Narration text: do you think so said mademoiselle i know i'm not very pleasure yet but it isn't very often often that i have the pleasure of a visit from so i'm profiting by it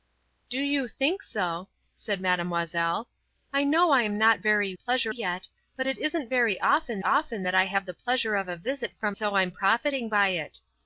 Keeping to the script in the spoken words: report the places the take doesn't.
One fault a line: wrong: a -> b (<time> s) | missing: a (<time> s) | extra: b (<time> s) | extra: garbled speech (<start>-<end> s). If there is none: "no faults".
no faults